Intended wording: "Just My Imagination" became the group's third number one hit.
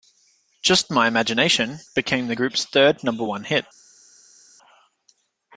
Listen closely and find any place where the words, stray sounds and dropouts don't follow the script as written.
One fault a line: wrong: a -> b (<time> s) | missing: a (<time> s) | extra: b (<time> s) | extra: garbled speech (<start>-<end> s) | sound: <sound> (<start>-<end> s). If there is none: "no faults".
no faults